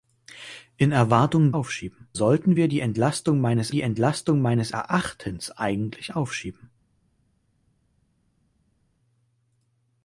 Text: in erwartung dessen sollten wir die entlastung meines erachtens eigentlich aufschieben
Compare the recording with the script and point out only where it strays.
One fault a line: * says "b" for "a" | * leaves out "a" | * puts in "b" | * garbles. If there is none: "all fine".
* says "aufschieben" for "dessen"
* puts in "die entlastung meines"